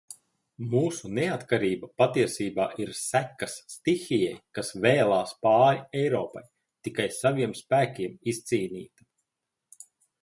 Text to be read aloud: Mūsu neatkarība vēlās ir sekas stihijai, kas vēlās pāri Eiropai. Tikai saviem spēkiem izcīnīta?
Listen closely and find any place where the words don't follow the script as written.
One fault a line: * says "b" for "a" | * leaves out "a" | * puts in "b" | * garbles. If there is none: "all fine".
* says "patiesībā" for "vēlās"